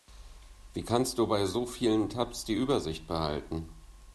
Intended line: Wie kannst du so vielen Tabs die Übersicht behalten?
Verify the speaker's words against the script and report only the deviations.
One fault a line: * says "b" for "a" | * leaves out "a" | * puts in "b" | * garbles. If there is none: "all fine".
* puts in "bei"